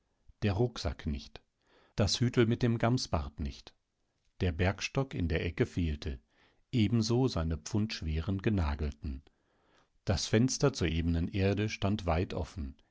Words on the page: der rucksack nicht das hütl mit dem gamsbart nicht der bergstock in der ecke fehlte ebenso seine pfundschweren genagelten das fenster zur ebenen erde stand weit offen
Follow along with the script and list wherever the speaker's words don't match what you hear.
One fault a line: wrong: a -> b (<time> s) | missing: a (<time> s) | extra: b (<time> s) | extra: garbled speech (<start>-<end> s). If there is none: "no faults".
no faults